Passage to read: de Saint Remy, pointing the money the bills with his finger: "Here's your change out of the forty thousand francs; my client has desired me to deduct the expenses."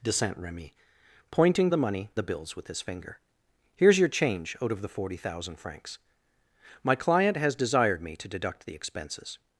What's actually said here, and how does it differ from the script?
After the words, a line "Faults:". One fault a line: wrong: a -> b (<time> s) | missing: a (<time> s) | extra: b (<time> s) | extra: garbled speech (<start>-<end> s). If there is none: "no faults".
de Saint Remy, pointing the money the bills with his finger: "Here's your change out of the forty thousand francs; my client has desired me to deduct the expenses."
Faults:
no faults